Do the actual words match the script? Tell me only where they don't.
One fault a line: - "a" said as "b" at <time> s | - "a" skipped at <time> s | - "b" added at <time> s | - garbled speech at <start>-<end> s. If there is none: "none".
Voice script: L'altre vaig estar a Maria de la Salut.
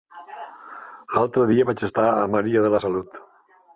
- "dia" added at 1.5 s